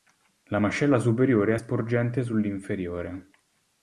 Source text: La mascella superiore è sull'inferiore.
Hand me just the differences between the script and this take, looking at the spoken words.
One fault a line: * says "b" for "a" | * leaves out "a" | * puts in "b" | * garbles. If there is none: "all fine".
* puts in "sporgente"